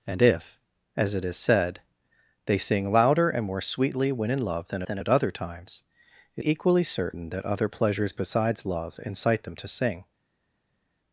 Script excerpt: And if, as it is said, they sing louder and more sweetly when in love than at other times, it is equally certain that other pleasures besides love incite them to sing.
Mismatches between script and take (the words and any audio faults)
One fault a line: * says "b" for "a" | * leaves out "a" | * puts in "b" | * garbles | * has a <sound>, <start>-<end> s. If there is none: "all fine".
* puts in "than"
* leaves out "is"